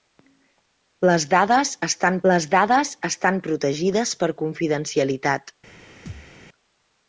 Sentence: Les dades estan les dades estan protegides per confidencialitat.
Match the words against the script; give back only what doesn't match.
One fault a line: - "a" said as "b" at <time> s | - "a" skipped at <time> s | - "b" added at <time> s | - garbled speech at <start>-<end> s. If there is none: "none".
none